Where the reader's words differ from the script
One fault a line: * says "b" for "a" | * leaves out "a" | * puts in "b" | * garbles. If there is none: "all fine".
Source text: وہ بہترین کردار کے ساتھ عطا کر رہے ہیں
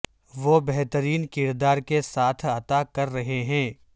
all fine